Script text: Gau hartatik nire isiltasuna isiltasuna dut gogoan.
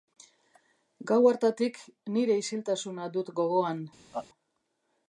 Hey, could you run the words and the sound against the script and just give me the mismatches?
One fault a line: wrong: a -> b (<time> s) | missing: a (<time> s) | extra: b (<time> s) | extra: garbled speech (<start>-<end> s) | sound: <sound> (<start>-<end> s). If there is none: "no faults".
missing: isiltasuna (3.1 s)
sound: laugh (4.1-4.3 s)